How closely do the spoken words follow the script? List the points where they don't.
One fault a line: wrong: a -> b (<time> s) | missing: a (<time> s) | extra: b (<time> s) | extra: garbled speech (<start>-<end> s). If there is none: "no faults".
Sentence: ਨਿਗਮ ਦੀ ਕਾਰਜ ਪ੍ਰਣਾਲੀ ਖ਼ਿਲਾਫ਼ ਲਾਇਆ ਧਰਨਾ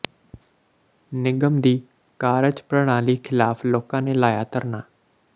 extra: ਲੋਕਾਂ ਨੇ (3.6 s)